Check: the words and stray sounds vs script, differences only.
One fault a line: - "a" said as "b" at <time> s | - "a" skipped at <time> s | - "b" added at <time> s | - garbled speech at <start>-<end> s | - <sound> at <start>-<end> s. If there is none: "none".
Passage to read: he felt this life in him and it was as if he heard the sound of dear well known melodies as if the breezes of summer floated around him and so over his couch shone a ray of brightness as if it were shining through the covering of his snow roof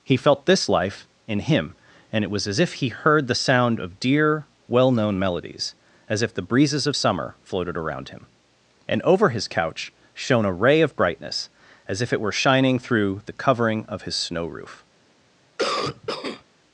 - "so" skipped at 9.0 s
- cough at 15.6-16.4 s